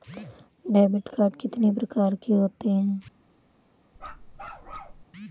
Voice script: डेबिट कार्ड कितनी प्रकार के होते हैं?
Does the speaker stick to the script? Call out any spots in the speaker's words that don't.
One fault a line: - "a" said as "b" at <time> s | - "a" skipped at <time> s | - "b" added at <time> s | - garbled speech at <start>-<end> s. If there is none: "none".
none